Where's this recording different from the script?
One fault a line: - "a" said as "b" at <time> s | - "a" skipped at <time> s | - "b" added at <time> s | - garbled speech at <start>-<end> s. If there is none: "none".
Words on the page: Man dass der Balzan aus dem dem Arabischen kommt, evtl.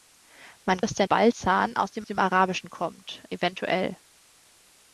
none